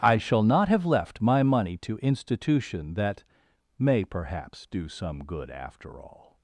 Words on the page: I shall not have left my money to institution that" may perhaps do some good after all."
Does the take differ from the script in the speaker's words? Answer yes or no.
no